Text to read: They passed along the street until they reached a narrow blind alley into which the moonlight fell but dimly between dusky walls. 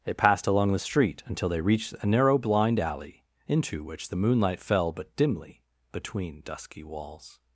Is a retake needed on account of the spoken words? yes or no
no